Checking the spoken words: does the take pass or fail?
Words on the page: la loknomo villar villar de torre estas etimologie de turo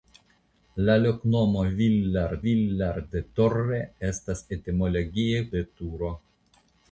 pass